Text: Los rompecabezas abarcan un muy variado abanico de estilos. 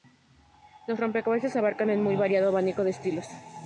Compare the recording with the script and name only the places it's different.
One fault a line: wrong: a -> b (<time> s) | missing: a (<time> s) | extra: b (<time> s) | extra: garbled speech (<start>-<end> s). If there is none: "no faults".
no faults